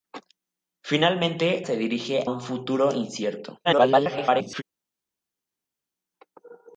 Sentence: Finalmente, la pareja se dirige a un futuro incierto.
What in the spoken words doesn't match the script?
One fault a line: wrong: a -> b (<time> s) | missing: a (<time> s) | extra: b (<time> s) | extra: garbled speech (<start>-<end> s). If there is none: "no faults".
missing: la pareja (1.6 s)
missing: a (2.3 s)
extra: garbled speech (3.6-4.6 s)